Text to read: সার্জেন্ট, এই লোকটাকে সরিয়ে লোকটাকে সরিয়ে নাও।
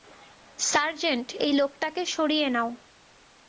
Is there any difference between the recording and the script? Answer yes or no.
yes